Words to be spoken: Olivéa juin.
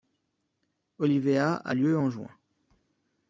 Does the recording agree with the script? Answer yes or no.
no